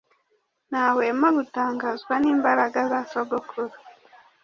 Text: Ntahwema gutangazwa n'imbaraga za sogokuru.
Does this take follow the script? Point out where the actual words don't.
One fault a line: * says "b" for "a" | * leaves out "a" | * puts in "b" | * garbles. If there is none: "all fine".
all fine